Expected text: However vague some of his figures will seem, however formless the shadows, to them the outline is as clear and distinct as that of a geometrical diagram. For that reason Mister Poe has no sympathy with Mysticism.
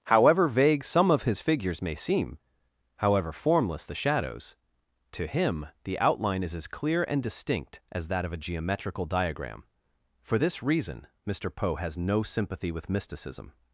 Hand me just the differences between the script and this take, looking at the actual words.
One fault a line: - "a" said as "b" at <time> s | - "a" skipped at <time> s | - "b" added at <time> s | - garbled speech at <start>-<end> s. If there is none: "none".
- "will" said as "may" at 1.8 s
- "them" said as "him" at 5.3 s
- "that" said as "this" at 10.4 s